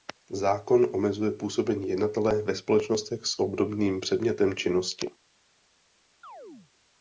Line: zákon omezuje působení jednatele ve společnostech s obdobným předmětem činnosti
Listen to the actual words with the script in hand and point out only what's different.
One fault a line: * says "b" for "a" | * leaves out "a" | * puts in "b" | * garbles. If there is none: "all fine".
all fine